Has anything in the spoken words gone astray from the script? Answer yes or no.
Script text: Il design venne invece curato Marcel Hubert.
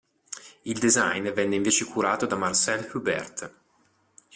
yes